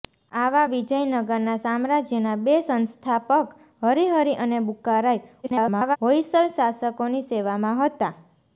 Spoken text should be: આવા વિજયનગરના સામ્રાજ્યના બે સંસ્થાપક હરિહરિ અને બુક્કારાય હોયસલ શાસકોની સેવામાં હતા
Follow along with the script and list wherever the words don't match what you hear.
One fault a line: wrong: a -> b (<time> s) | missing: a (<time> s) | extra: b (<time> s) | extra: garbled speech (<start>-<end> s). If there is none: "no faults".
extra: garbled speech (5.4-6.0 s)